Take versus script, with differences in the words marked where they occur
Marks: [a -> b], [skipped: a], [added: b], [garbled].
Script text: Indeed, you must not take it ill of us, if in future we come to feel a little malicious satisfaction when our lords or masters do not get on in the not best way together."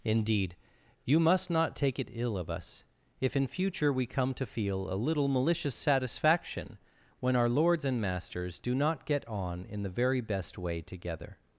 Indeed, you must not take it ill of us, if in future we come to feel a little malicious satisfaction when our lords [or -> and] masters do not get on in the [not -> very] best way together."